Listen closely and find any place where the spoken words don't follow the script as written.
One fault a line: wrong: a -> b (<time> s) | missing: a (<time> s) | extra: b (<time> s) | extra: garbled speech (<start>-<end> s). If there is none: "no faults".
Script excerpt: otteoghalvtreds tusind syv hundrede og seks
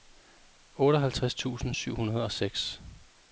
no faults